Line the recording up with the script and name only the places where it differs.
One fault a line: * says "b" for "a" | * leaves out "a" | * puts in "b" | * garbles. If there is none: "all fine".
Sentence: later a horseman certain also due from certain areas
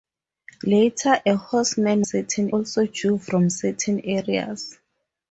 all fine